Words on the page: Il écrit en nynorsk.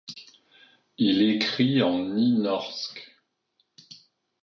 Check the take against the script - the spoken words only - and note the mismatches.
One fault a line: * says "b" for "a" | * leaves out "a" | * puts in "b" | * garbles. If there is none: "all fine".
all fine